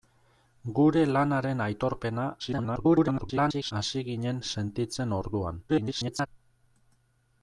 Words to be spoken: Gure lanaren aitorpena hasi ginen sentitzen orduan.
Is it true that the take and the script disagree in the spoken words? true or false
true